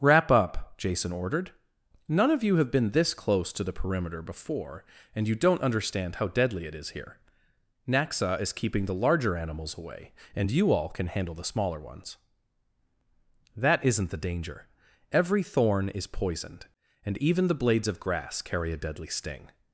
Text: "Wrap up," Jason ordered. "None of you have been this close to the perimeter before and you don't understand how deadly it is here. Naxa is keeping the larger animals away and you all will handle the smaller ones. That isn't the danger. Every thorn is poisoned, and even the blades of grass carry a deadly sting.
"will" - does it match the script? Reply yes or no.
no